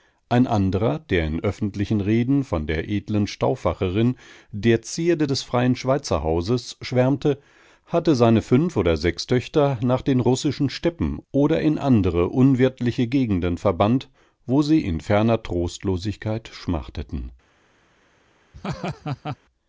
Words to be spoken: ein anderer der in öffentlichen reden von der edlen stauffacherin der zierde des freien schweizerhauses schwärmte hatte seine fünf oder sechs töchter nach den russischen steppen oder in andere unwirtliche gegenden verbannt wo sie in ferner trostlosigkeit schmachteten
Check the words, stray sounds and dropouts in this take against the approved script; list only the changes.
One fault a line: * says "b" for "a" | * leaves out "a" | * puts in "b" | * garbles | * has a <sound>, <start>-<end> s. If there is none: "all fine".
* has a laugh, 18.5-19.4 s